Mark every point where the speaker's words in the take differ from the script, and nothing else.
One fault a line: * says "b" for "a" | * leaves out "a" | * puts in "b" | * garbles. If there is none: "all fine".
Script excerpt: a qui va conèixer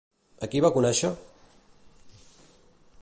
all fine